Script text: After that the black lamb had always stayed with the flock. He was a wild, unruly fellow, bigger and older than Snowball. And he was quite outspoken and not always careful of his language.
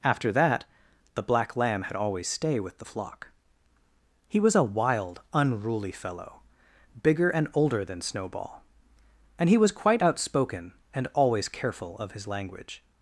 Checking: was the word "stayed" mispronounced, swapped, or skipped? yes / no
yes